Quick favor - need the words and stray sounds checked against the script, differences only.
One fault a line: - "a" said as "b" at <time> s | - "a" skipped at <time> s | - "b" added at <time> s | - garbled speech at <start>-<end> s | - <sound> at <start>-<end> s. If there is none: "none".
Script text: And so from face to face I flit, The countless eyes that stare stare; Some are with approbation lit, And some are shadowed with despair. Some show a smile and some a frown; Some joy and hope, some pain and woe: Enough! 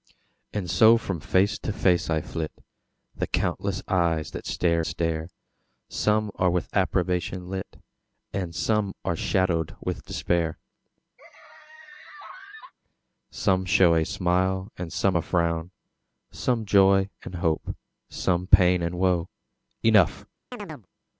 - laugh at 11.2-12.7 s
- chirp at 20.5-20.9 s